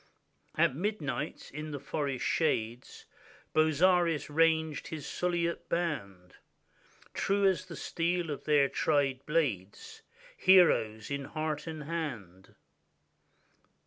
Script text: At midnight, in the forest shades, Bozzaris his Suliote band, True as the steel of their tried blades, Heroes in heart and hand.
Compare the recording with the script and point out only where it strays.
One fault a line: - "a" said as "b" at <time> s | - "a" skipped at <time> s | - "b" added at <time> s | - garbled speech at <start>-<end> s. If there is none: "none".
- "ranged" added at 4.3 s